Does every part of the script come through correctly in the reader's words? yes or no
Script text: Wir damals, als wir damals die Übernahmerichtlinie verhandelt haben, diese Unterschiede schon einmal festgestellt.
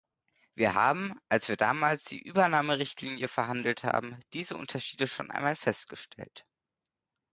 no